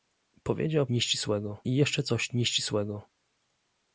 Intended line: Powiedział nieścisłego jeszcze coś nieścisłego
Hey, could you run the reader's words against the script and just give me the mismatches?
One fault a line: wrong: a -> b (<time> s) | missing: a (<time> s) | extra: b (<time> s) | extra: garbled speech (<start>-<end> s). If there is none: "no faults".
no faults